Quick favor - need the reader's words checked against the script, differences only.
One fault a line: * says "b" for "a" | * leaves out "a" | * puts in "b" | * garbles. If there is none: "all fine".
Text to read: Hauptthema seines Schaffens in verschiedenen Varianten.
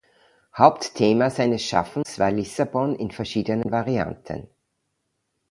* puts in "war Lissabon"